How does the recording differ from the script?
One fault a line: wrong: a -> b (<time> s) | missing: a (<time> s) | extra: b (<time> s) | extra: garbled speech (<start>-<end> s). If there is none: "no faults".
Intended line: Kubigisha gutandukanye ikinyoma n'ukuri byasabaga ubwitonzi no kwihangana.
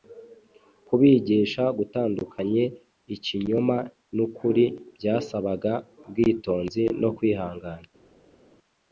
no faults